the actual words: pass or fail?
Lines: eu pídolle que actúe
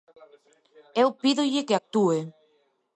pass